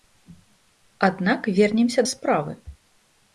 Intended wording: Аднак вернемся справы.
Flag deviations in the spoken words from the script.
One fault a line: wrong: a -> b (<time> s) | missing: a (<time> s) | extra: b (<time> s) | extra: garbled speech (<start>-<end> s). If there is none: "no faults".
no faults